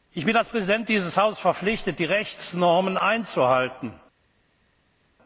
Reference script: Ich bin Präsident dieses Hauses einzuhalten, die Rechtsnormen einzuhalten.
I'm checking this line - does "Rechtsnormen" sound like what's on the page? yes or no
yes